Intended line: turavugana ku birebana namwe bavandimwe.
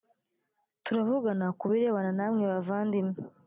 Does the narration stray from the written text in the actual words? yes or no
no